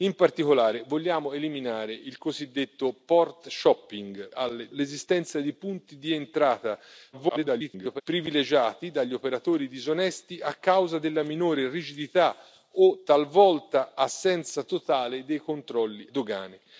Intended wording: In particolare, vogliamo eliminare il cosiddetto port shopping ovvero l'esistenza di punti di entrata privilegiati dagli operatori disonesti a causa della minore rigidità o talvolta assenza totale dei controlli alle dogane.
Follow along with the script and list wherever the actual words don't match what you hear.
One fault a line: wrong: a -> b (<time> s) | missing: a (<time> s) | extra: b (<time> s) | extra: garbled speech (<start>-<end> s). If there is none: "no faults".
wrong: ovvero -> alle (4.3 s)
extra: garbled speech (7.1-8.0 s)
missing: alle (16.1 s)